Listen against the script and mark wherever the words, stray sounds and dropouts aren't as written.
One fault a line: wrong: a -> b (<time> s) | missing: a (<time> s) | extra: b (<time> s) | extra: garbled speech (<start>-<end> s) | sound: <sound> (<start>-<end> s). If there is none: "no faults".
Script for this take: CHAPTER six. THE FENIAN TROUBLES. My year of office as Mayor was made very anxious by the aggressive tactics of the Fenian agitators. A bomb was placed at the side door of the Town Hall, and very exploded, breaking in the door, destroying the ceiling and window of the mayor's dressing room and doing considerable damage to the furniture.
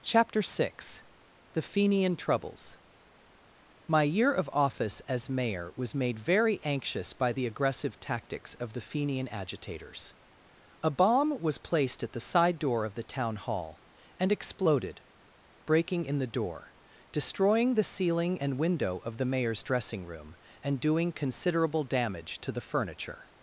missing: very (14.3 s)